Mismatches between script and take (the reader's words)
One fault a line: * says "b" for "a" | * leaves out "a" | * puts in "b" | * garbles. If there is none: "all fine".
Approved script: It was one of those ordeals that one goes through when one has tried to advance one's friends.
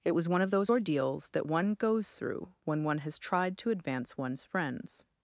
all fine